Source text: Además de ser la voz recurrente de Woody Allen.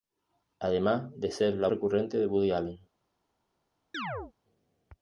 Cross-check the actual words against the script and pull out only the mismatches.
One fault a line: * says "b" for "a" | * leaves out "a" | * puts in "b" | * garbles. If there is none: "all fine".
* leaves out "voz"